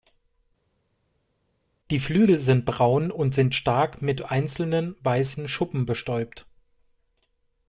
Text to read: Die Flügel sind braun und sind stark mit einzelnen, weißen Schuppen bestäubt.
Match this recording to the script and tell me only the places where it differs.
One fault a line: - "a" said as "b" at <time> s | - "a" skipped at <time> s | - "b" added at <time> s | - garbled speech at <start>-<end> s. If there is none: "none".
none